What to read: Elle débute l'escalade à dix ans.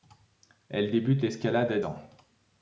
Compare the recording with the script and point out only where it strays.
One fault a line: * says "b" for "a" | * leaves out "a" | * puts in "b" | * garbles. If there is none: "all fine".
* leaves out "dix"